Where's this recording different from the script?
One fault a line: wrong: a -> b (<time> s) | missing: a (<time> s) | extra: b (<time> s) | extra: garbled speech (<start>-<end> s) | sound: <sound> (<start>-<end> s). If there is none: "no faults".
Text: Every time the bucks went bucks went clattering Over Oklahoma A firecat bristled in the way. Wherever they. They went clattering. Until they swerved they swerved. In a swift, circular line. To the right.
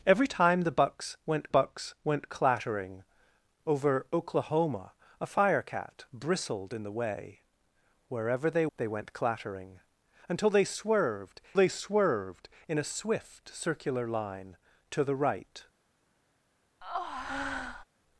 sound: breath (16.8-17.8 s)